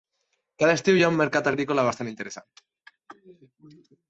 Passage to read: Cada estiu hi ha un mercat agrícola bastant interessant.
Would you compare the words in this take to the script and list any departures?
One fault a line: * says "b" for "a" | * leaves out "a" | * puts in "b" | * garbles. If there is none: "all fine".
all fine